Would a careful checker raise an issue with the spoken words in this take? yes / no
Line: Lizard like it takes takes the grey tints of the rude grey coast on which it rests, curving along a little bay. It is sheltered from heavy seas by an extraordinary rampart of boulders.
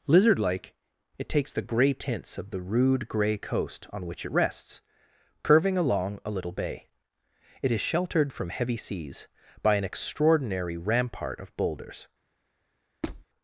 yes